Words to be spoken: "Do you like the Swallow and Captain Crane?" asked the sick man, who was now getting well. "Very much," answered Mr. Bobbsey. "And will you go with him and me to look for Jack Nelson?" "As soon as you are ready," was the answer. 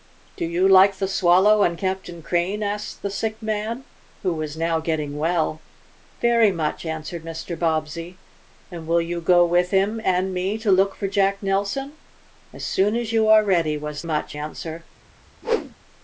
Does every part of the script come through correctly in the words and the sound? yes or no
no